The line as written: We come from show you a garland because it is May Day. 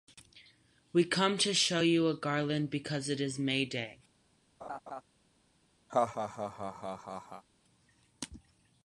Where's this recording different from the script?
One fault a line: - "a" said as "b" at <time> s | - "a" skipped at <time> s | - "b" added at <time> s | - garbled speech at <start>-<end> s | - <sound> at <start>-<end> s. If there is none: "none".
- "from" said as "to" at 1.4 s
- laugh at 4.6-5.0 s
- laugh at 5.9-7.4 s